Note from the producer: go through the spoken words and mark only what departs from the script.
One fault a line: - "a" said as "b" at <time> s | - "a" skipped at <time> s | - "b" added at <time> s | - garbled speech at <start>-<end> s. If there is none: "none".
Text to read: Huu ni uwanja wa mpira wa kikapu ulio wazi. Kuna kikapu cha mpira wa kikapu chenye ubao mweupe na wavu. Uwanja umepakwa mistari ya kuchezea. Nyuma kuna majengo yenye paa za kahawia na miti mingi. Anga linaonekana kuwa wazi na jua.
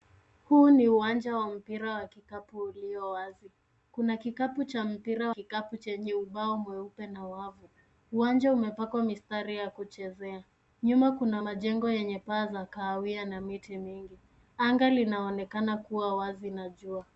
- "wa" skipped at 5.3 s